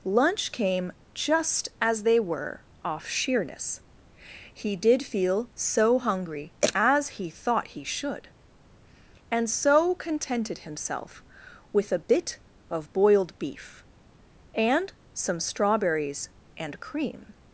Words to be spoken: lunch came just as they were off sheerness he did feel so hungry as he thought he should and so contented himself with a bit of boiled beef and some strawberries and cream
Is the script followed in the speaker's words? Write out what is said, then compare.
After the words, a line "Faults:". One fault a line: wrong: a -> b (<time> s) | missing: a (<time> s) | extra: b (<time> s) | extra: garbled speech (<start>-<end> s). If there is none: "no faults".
lunch came just as they were off sheerness he did feel so hungry as he thought he should and so contented himself with a bit of boiled beef and some strawberries and cream
Faults:
no faults